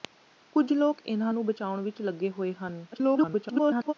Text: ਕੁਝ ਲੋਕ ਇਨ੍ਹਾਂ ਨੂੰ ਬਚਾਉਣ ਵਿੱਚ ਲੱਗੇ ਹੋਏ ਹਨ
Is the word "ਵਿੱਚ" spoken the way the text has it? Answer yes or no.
yes